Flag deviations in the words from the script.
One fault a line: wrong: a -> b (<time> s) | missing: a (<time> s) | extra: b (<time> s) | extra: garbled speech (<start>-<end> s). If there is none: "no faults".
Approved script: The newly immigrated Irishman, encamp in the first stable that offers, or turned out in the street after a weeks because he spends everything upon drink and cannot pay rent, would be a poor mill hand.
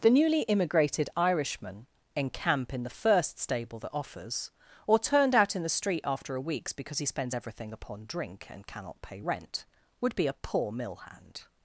no faults